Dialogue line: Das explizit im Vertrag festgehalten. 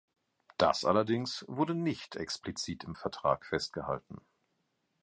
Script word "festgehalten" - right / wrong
right